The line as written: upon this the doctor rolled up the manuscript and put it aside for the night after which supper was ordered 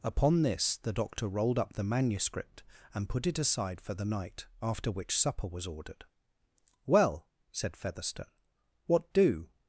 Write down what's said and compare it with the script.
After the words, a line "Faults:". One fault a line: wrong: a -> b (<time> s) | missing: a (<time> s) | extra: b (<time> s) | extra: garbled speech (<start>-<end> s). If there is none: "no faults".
upon this the doctor rolled up the manuscript and put it aside for the night after which supper was ordered well said featherstone what do
Faults:
extra: well said featherstone what do (6.9 s)